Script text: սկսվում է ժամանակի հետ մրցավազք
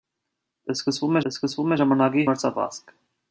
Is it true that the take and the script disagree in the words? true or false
true